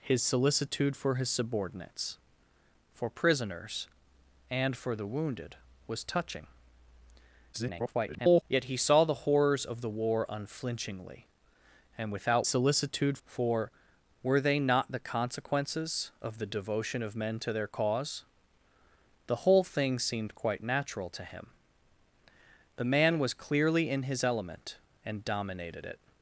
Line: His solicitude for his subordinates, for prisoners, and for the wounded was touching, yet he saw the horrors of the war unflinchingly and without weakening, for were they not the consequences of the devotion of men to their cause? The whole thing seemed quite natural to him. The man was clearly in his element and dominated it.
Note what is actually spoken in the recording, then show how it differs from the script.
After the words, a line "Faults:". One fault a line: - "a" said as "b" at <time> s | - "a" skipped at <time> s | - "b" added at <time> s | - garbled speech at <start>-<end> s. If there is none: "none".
His solicitude for his subordinates, for prisoners, and for the wounded was touching, [garbled] yet he saw the horrors of the war unflinchingly and without solicitude, for were they not the consequences of the devotion of men to their cause? The whole thing seemed quite natural to him. The man was clearly in his element and dominated it.
Faults:
- garbled speech at 7.5-8.4 s
- "weakening" said as "solicitude" at 12.4 s